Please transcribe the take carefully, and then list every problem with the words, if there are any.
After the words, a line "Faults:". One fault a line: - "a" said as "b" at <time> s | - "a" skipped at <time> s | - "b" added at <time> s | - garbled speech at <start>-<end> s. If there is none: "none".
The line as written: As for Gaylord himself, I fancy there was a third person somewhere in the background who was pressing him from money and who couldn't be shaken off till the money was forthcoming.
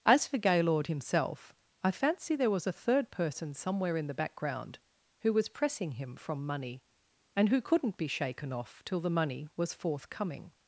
As for Gaylord himself, I fancy there was a third person somewhere in the background who was pressing him from money and who couldn't be shaken off till the money was forthcoming.
Faults:
none